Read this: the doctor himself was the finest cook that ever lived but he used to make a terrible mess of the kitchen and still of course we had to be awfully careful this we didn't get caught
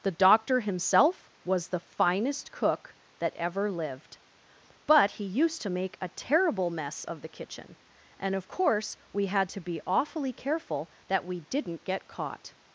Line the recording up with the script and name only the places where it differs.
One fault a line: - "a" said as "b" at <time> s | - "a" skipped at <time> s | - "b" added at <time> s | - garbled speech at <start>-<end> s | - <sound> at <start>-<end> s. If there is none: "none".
- "still" skipped at 8.4 s
- "this" said as "that" at 11.1 s